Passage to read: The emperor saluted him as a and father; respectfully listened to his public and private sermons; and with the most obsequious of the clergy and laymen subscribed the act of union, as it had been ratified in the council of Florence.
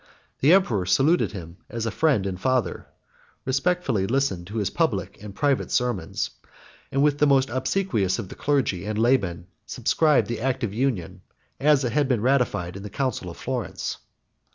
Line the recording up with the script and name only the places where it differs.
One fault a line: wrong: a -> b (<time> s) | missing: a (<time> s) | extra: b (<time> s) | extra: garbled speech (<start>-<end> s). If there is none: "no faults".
extra: friend (1.9 s)